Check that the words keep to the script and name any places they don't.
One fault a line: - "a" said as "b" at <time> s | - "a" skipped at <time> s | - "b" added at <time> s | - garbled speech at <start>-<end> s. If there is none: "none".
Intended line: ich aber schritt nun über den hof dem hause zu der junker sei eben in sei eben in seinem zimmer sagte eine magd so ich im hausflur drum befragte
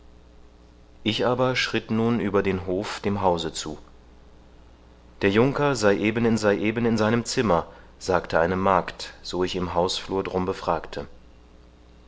none